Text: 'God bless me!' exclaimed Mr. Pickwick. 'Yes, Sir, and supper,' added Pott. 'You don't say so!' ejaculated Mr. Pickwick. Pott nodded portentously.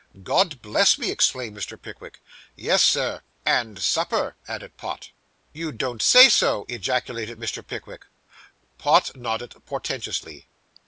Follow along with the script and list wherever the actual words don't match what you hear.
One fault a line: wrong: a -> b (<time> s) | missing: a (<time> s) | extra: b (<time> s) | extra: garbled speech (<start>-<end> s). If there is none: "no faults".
no faults